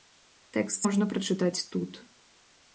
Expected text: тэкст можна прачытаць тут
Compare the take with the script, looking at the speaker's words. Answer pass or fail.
pass